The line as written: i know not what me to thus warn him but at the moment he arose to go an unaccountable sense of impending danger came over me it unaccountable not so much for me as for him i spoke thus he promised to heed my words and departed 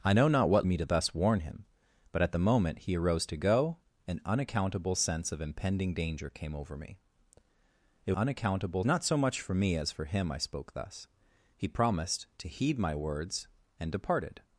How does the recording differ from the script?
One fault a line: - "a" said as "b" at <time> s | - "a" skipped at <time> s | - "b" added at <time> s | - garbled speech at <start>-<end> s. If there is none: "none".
none